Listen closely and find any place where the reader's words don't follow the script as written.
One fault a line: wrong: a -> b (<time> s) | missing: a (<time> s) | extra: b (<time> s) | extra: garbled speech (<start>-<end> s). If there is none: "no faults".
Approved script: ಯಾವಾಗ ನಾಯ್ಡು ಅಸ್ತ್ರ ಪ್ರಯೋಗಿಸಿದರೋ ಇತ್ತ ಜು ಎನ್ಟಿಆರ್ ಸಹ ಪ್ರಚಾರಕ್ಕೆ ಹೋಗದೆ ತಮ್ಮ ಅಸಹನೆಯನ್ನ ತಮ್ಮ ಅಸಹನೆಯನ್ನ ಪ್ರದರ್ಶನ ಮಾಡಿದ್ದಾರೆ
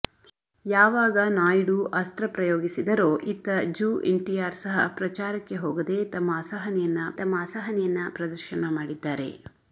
no faults